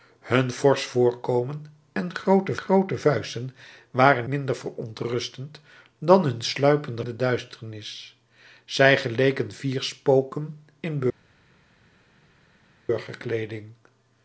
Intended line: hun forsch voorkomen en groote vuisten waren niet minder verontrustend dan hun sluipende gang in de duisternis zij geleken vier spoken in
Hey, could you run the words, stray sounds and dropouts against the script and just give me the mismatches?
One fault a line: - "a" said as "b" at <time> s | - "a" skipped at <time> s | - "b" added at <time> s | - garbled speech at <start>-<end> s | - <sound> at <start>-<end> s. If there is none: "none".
- "groote" added at 2.6 s
- "niet" skipped at 4.3 s
- "gang in" skipped at 7.0 s